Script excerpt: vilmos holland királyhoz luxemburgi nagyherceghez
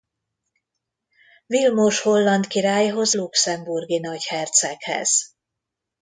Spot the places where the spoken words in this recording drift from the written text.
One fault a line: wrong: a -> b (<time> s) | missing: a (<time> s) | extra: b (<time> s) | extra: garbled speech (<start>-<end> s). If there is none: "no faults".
no faults